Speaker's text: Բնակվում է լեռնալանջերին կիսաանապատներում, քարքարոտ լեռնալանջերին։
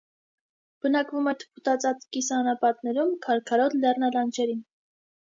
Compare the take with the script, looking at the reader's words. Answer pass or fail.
fail